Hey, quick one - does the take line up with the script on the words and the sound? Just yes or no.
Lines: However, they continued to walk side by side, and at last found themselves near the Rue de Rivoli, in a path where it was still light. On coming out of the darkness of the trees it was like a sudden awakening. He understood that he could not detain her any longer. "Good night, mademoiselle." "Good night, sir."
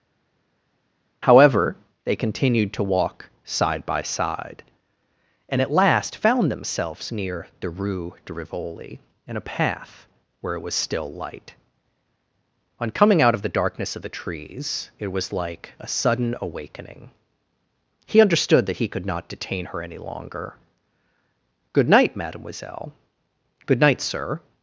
yes